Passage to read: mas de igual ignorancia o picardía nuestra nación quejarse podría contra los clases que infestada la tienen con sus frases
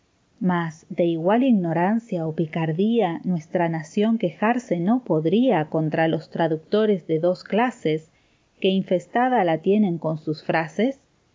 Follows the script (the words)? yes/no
no